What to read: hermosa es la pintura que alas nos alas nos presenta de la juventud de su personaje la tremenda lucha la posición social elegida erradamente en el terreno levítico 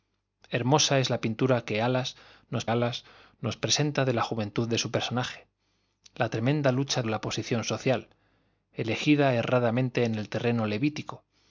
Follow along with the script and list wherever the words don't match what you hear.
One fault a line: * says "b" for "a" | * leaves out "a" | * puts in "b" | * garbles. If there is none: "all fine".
all fine